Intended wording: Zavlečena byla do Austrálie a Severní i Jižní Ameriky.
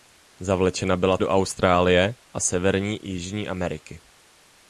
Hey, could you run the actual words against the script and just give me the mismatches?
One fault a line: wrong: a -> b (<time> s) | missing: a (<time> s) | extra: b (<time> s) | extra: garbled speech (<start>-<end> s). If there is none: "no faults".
no faults